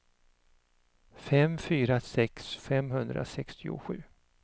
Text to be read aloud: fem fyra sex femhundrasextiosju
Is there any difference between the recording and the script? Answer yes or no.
no